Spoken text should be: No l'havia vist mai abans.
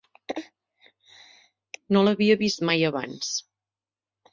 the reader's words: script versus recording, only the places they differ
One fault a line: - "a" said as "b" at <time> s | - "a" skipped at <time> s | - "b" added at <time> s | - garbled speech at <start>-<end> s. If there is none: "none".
none